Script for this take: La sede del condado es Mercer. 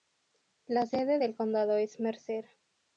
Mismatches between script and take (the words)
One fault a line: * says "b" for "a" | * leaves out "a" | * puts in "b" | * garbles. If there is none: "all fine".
all fine